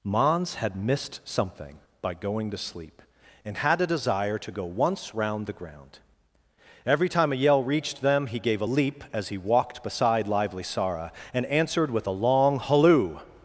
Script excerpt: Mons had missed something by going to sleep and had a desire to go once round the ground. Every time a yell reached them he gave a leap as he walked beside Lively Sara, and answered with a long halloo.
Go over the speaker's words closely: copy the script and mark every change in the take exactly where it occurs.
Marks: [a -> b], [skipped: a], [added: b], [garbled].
Mons had missed something by going to sleep and had a desire to go once round the ground. Every time a yell reached them he gave a leap as he walked beside Lively Sara, and answered with a long halloo.